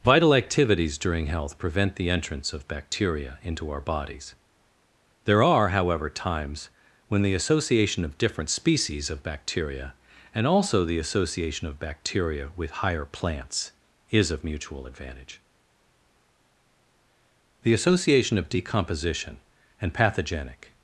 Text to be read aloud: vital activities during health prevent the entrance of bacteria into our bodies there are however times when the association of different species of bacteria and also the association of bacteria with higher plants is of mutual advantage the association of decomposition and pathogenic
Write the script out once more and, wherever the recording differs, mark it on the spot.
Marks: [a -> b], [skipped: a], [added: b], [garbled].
vital activities during health prevent the entrance of bacteria into our bodies there are however times when the association of different species of bacteria and also the association of bacteria with higher plants is of mutual advantage the association of decomposition and pathogenic